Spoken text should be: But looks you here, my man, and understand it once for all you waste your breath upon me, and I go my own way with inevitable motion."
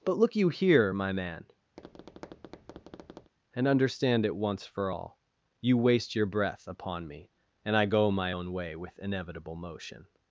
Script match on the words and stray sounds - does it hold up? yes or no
no